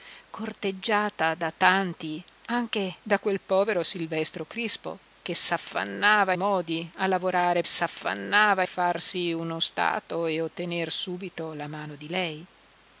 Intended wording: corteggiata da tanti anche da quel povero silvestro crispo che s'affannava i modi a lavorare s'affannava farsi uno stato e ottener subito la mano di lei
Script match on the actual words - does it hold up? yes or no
yes